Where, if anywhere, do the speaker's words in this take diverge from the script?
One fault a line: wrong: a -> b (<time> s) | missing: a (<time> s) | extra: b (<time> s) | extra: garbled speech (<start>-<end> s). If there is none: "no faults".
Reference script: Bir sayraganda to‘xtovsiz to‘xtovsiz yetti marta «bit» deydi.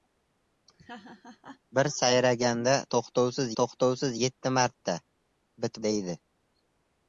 no faults